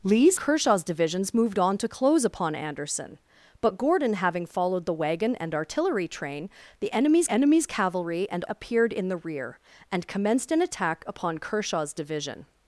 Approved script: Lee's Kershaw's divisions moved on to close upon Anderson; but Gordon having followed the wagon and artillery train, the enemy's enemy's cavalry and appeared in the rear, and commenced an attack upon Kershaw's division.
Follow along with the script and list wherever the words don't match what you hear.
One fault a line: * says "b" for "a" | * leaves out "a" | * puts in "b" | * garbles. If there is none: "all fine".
all fine